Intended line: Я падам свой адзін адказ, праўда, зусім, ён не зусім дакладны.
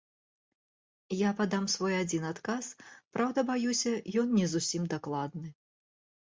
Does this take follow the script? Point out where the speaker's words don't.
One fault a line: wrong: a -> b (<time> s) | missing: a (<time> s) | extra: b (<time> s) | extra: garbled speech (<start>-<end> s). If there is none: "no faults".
wrong: зусім -> баюся (3.5 s)